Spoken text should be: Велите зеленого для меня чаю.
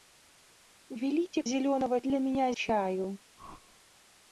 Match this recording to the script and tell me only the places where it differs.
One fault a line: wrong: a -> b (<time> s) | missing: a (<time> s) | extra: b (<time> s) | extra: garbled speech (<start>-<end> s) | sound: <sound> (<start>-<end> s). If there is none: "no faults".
sound: whoosh (3.4-3.8 s)